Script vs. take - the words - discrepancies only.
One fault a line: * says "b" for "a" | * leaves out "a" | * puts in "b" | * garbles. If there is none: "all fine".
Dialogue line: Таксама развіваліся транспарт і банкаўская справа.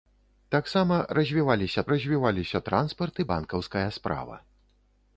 * puts in "развіваліся"